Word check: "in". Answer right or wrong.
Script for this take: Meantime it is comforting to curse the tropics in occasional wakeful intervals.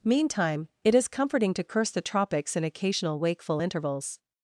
right